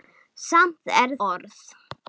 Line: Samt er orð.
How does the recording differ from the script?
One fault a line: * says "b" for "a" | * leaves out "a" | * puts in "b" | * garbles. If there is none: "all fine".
all fine